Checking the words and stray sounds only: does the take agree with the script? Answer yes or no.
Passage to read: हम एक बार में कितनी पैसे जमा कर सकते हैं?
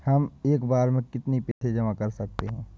no